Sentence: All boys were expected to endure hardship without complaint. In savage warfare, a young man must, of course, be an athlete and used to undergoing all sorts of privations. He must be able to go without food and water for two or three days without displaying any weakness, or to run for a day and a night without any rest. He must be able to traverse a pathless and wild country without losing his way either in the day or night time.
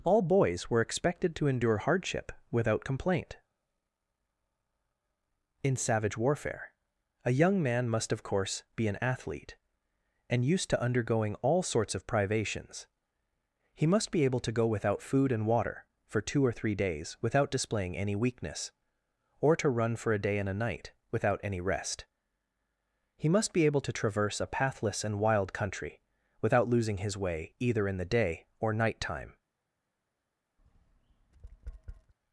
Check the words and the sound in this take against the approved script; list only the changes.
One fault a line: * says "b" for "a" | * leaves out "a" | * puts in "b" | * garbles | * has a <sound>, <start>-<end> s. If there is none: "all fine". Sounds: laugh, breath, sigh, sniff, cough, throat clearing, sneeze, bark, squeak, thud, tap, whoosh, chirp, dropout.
* has a tap, 30.6-32.1 s